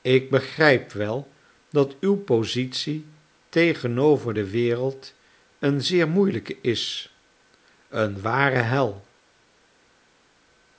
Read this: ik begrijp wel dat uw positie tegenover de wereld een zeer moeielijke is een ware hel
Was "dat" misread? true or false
false